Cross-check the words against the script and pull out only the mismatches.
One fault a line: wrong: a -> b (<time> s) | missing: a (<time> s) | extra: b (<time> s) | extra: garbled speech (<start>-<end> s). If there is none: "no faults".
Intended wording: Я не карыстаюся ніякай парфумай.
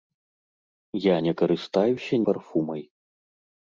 missing: ніякай (2.1 s)